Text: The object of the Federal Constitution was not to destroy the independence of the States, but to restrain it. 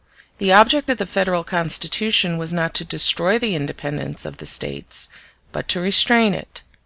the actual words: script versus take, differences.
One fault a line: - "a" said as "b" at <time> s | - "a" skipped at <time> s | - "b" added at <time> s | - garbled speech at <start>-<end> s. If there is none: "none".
none